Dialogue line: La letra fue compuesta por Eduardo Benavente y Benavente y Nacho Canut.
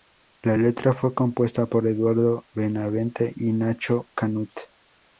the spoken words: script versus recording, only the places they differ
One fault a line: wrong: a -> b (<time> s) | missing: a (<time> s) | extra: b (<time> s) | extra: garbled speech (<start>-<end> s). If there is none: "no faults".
missing: Benavente y (3.5 s)